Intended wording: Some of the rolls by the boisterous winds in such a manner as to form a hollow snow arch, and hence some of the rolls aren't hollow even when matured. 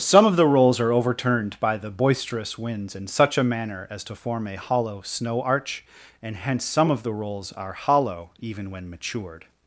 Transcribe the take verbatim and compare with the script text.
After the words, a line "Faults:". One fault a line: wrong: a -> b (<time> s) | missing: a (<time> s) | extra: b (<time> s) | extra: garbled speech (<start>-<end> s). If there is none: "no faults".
Some of the rolls are overturned by the boisterous winds in such a manner as to form a hollow snow arch, and hence some of the rolls are hollow even when matured.
Faults:
extra: are overturned (0.8 s)
wrong: aren't -> are (7.5 s)